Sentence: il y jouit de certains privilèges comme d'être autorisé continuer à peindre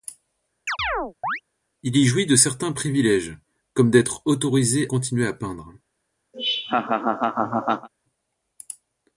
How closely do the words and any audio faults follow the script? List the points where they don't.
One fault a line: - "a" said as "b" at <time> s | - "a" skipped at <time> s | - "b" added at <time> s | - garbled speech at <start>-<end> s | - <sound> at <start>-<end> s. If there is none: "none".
- chirp at 0.7-1.4 s
- laugh at 6.3-7.9 s